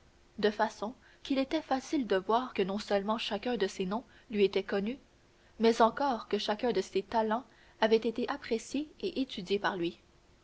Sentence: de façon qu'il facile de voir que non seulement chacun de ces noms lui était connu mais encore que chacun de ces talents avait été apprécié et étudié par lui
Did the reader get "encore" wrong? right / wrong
right